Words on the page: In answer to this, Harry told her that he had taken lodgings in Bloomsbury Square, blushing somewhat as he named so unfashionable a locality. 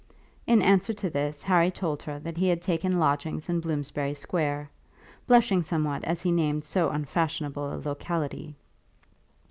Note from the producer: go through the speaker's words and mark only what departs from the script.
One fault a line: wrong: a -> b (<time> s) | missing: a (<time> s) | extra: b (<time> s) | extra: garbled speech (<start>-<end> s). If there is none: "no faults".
no faults